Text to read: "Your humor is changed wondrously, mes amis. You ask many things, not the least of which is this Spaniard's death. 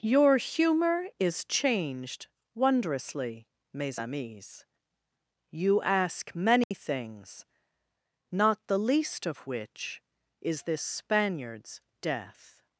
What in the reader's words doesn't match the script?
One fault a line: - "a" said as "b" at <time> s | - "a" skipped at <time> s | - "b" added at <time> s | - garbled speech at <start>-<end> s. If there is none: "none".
none